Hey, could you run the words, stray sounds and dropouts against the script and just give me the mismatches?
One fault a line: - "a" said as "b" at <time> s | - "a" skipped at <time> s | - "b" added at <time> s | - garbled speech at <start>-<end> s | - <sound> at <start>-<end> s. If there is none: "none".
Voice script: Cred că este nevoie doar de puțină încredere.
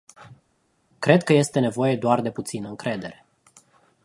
none